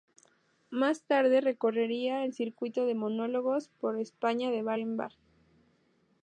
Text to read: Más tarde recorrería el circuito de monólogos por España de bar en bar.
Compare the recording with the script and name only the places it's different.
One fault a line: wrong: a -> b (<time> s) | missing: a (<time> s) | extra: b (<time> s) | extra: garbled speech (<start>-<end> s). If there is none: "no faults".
no faults